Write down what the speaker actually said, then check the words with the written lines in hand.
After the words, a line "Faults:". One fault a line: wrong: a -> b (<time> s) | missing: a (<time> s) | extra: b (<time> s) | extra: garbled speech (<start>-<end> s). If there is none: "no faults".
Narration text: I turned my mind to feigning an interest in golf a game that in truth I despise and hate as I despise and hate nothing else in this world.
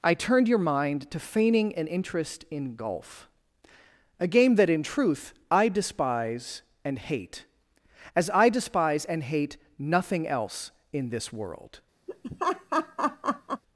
I turned your mind to feigning an interest in golf a game that in truth I despise and hate as I despise and hate nothing else in this world.
Faults:
wrong: my -> your (0.5 s)